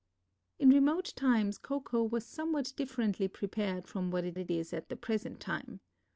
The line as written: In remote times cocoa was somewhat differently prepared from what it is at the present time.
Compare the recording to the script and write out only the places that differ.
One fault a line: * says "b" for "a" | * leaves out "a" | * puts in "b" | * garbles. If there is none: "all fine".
* puts in "it"